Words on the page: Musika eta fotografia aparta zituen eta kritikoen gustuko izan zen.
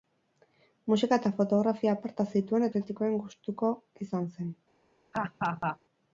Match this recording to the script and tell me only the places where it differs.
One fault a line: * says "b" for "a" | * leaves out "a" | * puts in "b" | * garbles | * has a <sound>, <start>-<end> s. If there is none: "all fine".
* leaves out "eta"
* has a laugh, 5.1-5.8 s